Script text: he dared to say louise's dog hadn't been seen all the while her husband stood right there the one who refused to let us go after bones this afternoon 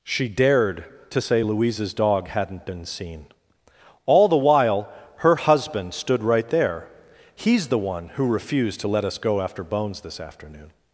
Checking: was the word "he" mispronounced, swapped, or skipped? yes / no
yes